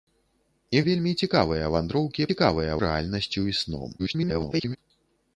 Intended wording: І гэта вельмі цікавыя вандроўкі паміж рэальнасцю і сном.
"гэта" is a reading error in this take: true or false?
true